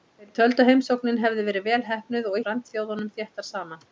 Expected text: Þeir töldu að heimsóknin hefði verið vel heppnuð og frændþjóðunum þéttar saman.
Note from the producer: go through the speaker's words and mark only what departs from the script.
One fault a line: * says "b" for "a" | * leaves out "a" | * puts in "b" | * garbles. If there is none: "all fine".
all fine